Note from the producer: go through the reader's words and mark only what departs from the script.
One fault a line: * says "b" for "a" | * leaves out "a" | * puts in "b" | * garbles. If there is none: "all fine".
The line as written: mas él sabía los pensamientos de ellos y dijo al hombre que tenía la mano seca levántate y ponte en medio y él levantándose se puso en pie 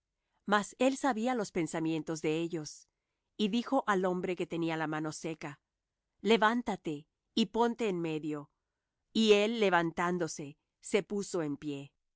all fine